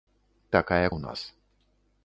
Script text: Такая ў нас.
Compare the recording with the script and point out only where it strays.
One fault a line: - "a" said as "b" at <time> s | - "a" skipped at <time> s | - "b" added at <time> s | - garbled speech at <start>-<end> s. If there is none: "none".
none